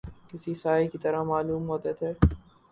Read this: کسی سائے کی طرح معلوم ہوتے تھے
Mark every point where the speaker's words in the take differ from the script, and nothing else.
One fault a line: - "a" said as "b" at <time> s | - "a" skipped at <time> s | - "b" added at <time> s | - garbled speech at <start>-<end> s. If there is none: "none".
none